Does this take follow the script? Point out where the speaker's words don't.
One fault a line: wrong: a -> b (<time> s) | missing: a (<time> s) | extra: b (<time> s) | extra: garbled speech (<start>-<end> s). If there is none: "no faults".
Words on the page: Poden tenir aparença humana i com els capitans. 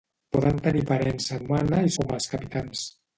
no faults